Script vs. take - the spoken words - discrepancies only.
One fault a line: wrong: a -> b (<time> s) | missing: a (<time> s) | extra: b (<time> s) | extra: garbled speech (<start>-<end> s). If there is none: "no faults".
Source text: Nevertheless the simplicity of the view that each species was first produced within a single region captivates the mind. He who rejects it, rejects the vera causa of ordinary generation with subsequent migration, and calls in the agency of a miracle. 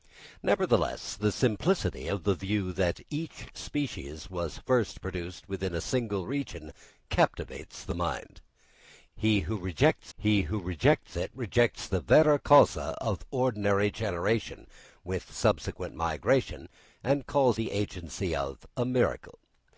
extra: he who rejects (10.2 s)
missing: in (17.6 s)